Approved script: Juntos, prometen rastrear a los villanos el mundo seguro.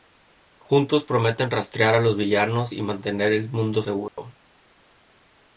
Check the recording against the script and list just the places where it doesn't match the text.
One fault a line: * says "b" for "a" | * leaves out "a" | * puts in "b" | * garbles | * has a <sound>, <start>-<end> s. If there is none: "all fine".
* puts in "y mantener"
* has a dropout, 4.1-4.2 s